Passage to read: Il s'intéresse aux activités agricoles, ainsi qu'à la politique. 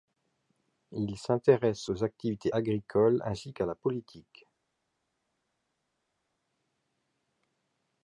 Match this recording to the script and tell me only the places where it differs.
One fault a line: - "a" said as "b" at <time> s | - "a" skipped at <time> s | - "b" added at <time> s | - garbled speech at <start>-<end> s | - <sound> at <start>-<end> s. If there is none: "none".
none